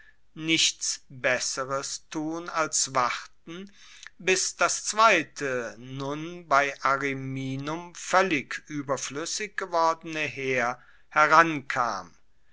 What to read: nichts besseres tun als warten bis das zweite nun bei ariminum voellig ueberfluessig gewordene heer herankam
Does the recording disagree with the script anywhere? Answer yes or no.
no